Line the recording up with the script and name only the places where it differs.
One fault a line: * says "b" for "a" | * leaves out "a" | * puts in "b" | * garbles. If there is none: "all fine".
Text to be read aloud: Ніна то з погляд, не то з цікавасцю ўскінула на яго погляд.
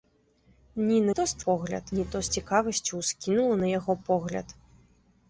all fine